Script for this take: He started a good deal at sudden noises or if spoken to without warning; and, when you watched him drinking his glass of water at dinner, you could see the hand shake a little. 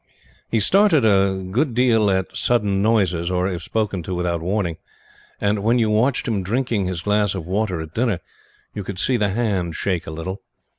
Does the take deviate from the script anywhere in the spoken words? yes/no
no